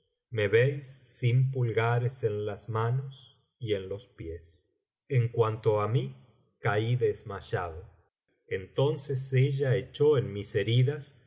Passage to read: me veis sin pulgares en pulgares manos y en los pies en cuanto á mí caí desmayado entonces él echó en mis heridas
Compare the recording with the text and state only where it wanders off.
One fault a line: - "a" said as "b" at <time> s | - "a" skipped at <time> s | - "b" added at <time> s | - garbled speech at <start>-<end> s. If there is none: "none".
- "pulgares" said as "las" at 2.5 s
- "él" said as "ella" at 9.3 s